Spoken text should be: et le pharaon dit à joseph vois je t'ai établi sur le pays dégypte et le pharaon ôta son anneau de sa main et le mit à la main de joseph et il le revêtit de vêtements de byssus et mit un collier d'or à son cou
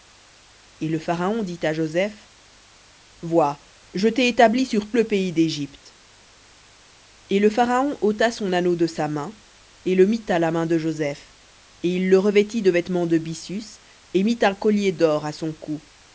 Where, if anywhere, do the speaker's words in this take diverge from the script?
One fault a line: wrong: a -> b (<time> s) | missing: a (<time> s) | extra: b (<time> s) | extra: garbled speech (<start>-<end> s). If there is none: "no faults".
no faults